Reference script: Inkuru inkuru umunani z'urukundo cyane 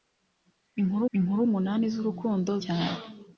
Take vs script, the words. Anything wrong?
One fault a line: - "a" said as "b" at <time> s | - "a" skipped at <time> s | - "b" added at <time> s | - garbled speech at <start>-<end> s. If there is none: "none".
none